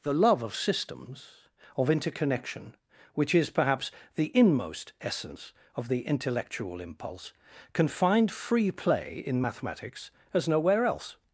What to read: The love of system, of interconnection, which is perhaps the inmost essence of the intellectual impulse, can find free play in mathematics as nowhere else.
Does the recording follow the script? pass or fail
fail